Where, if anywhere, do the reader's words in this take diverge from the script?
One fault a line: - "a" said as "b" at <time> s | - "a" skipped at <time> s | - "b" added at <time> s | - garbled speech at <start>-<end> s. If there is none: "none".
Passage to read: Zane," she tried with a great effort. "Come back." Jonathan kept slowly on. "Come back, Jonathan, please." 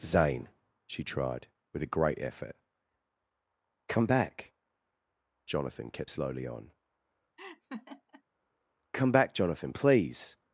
none